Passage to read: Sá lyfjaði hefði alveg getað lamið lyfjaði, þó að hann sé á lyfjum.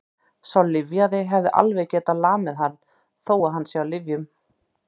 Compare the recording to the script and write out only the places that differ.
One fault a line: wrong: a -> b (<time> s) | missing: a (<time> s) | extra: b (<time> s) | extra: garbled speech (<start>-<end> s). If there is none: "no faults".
wrong: lyfjaði -> hann (2.6 s)